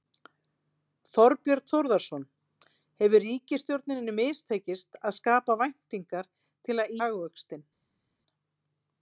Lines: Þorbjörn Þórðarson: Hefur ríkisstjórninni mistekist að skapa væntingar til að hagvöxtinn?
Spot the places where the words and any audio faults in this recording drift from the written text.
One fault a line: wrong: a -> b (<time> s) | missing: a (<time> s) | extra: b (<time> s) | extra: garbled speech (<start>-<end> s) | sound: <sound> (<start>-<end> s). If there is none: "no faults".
no faults